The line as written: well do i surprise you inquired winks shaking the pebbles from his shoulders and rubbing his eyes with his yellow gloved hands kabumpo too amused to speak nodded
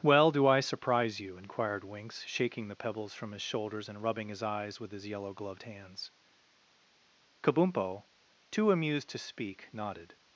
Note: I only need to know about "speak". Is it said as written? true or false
true